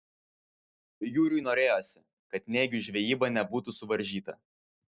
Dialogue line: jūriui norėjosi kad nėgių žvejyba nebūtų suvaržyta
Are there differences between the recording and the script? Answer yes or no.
no